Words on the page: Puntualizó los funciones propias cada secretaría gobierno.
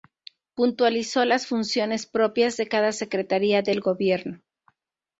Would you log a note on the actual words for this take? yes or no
yes